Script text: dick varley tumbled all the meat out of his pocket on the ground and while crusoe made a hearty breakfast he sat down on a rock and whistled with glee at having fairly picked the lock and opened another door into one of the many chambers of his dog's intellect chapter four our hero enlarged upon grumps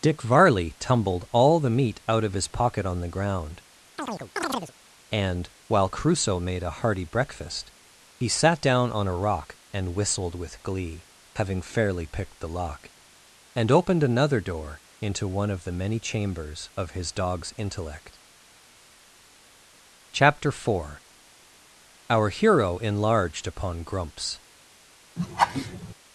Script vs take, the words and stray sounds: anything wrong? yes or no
yes